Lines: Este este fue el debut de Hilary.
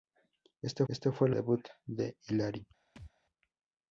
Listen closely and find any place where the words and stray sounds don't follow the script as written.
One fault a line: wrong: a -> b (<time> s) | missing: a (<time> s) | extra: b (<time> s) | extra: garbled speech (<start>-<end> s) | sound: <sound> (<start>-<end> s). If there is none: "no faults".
sound: thud (3.0-3.1 s)